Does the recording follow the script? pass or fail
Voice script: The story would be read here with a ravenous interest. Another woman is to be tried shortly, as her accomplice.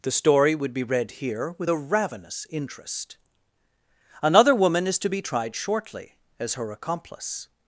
pass